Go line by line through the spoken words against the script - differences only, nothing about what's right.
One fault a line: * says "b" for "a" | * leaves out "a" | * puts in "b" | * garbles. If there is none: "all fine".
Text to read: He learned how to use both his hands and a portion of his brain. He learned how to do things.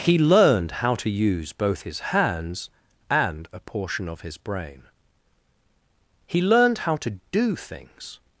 all fine